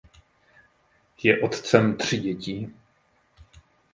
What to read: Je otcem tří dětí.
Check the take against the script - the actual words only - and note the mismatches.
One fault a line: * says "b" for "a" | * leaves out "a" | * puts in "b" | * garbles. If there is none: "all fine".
all fine